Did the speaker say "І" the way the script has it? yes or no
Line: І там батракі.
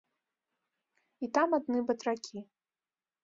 yes